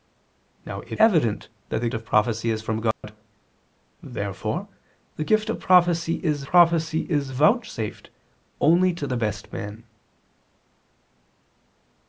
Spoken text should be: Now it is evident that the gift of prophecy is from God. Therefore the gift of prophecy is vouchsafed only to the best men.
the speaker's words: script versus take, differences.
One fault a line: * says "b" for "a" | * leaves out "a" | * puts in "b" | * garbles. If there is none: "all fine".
* leaves out "is"
* leaves out "gift"
* puts in "prophecy is"